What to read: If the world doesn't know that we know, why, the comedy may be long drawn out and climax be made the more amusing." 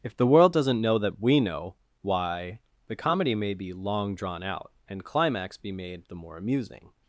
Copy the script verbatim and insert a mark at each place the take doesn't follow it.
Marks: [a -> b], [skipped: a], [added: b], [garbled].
If the world doesn't know that we know, why, the comedy may be long drawn out and climax be made the more amusing."